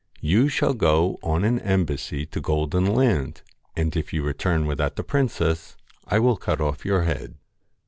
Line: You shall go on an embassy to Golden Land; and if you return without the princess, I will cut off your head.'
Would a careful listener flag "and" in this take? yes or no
no